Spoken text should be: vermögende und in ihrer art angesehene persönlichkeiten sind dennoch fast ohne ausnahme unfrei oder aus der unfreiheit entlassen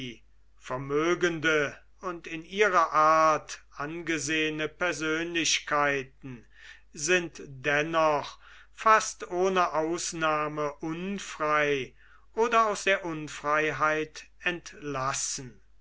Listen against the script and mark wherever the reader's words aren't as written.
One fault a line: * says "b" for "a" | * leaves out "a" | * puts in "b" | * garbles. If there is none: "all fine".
all fine